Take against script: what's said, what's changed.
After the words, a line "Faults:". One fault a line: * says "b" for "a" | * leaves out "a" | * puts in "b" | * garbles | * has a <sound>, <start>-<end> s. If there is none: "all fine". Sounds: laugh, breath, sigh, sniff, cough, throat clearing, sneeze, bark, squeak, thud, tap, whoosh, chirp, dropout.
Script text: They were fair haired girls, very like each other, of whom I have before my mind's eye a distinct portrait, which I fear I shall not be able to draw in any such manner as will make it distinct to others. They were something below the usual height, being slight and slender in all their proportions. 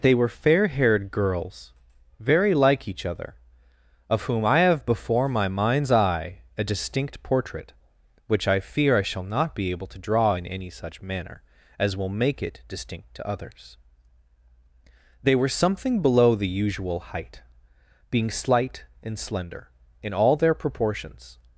They were fair haired girls, very like each other, of whom I have before my mind's eye a distinct portrait, which I fear I shall not be able to draw in any such manner as will make it distinct to others. They were something below the usual height, being slight and slender in all their proportions.
Faults:
all fine